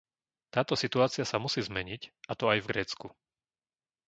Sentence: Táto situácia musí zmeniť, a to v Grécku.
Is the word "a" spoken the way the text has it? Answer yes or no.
yes